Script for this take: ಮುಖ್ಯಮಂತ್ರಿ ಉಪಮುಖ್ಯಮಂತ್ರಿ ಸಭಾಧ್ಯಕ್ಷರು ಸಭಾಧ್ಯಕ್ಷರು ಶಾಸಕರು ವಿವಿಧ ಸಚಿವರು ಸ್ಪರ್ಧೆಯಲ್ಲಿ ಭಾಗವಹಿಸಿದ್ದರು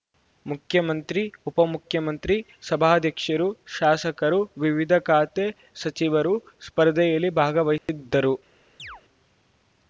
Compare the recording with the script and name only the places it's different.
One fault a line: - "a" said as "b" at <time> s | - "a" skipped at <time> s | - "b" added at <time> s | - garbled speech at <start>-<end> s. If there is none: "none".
- "ಸಭಾಧ್ಯಕ್ಷರು" skipped at 3.5 s
- "ಖಾತೆ" added at 5.1 s